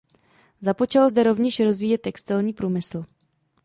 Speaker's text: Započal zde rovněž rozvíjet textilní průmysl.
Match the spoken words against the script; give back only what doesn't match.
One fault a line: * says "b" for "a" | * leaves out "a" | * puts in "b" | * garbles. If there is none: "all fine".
all fine